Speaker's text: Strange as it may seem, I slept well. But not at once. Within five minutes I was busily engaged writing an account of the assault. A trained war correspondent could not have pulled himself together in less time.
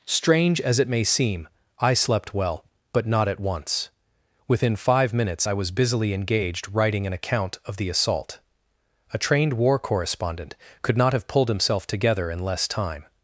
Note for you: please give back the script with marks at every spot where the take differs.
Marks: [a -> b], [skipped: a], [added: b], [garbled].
Strange as it may seem, I slept well. But not at once. Within five minutes I was busily engaged writing an account of the assault. A trained war correspondent could not have pulled himself together in less time.